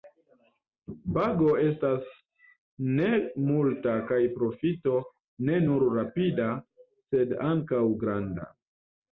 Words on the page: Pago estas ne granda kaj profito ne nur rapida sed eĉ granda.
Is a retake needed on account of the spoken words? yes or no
yes